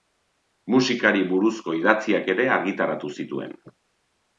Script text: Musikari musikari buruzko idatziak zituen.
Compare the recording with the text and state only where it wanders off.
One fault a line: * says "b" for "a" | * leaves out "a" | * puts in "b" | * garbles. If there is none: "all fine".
* leaves out "musikari"
* puts in "ere argitaratu"